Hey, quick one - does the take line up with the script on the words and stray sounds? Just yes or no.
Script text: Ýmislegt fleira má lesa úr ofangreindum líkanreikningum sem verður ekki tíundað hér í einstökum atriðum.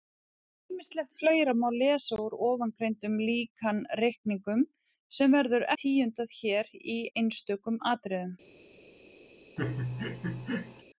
no